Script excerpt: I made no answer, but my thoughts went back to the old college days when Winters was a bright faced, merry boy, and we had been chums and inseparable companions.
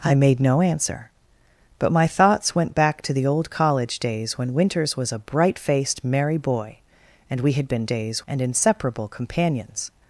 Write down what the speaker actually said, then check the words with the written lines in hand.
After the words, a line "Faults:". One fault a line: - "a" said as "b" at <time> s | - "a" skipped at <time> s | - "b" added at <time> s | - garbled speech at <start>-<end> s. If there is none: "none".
I made no answer, but my thoughts went back to the old college days when Winters was a bright faced, merry boy, and we had been days and inseparable companions.
Faults:
- "chums" said as "days" at 7.9 s